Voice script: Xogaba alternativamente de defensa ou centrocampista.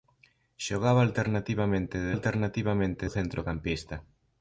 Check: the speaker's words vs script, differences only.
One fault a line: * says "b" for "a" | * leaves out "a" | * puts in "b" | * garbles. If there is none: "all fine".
* says "alternativamente" for "defensa"